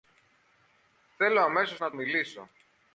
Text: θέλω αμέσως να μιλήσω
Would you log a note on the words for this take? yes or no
no